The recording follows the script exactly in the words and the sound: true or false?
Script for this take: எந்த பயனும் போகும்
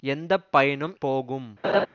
false